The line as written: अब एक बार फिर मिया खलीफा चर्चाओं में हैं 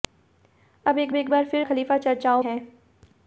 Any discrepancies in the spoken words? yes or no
yes